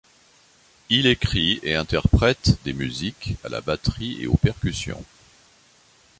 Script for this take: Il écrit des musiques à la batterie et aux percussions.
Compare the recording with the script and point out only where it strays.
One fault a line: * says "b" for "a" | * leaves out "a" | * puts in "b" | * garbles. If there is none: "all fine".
* puts in "et interprète"